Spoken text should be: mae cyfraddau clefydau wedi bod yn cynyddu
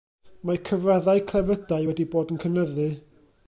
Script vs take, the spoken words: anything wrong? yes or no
no